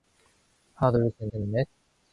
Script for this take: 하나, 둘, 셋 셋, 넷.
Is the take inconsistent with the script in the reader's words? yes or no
no